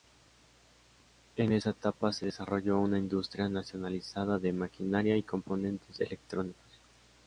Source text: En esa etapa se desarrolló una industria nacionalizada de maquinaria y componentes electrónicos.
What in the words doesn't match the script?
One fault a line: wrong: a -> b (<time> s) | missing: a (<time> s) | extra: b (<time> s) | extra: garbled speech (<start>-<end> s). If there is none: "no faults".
no faults